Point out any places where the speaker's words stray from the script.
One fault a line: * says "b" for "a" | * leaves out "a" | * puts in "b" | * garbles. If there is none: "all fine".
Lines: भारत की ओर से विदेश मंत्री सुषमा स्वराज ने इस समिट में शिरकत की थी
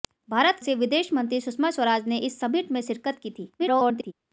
* leaves out "की ओर"
* garbles